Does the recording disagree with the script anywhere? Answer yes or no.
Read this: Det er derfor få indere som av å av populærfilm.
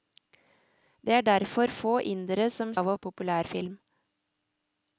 no